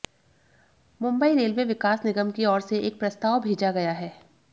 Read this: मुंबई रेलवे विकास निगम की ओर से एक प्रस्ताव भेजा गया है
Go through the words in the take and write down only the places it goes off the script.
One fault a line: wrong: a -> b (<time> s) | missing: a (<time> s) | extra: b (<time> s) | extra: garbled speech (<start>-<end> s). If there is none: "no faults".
no faults